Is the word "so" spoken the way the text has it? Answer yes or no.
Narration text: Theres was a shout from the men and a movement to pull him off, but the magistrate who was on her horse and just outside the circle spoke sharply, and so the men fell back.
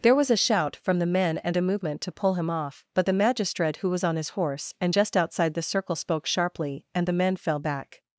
no